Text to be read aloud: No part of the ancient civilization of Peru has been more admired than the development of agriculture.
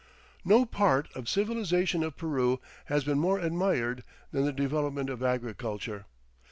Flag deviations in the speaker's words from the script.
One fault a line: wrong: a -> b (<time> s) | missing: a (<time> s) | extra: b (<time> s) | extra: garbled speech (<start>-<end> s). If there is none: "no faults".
missing: the ancient (1.2 s)